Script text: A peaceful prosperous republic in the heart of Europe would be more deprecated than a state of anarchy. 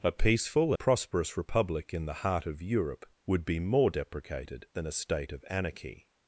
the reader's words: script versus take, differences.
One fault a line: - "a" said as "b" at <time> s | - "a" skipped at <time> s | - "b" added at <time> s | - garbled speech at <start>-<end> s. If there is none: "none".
none